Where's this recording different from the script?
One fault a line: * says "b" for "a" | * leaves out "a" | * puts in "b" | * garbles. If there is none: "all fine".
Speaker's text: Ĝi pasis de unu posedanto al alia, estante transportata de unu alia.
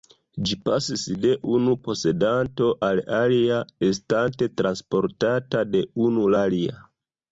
all fine